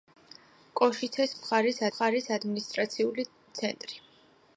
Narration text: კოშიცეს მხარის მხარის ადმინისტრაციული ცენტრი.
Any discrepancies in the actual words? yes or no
no